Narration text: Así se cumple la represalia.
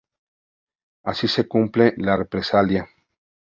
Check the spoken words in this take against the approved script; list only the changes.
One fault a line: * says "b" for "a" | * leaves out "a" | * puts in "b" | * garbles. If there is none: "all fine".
all fine